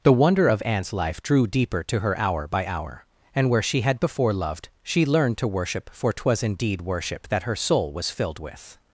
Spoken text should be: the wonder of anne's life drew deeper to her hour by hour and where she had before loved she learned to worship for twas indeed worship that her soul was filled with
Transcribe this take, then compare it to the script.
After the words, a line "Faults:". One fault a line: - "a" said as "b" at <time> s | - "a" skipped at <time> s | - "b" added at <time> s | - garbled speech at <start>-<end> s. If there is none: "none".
the wonder of anne's life drew deeper to her hour by hour and where she had before loved she learned to worship for twas indeed worship that her soul was filled with
Faults:
none